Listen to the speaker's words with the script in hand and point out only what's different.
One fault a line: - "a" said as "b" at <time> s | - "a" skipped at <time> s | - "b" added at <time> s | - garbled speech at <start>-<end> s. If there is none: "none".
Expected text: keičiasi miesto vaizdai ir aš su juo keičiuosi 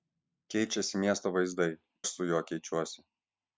- "ir" skipped at 1.7 s